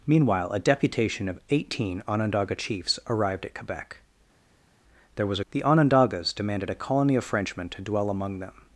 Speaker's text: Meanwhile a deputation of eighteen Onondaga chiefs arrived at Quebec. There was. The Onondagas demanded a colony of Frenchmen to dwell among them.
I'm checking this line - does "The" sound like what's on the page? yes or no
yes